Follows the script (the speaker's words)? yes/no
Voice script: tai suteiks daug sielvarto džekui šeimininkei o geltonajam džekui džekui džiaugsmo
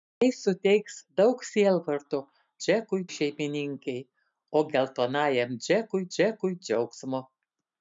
yes